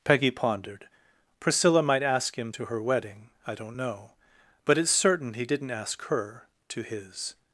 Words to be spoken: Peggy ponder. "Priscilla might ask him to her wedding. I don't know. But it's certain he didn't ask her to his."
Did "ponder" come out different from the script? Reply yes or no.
yes